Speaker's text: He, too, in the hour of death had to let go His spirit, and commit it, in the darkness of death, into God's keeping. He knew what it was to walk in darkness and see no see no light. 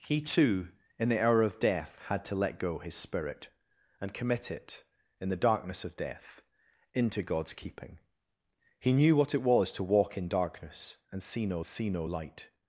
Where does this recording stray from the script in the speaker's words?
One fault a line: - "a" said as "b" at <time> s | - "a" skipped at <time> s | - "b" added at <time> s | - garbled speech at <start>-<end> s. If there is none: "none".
none